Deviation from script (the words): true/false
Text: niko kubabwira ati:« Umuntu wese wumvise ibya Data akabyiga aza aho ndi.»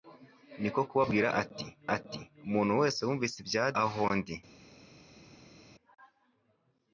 true